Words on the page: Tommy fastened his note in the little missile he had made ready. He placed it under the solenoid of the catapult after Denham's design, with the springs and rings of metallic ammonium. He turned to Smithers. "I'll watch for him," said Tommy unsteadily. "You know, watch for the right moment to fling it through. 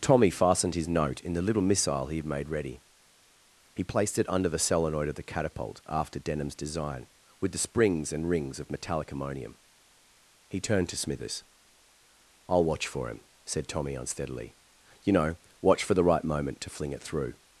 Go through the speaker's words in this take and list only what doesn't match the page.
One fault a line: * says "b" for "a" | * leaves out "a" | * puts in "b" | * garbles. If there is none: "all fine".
all fine